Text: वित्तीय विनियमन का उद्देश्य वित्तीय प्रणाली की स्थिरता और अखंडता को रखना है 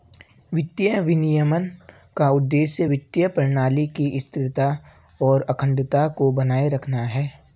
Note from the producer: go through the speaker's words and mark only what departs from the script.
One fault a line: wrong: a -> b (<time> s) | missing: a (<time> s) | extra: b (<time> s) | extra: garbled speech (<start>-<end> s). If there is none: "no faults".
extra: बनाए (6.3 s)